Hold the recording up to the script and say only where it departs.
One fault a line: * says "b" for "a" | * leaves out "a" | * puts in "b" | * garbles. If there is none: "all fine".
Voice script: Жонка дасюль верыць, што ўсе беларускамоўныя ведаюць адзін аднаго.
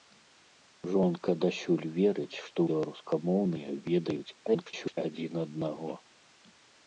* leaves out "ўсе"
* garbles